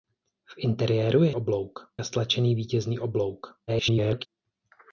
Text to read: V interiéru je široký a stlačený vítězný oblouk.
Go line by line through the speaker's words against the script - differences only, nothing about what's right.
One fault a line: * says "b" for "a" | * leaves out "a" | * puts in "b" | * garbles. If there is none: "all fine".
* says "oblouk" for "široký"
* garbles